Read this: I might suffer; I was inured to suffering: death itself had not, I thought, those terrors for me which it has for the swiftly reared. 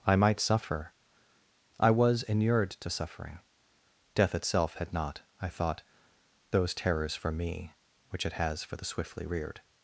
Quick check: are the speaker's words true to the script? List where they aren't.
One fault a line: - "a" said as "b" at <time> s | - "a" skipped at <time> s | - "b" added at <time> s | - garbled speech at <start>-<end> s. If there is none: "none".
none